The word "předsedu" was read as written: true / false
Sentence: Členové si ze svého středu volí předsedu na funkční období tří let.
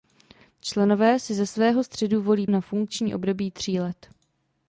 false